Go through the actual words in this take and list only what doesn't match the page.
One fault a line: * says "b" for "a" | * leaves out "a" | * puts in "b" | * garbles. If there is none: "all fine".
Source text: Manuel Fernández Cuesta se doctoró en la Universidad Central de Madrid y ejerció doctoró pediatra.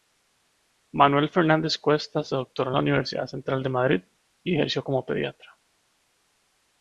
* says "como" for "doctoró"